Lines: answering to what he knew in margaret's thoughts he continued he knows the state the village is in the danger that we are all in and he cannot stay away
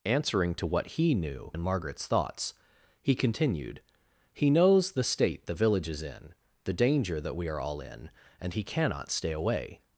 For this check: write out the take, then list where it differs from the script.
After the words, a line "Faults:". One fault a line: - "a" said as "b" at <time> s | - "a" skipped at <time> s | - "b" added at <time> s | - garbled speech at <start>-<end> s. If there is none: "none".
answering to what he knew in margaret's thoughts he continued he knows the state the village is in the danger that we are all in and he cannot stay away
Faults:
none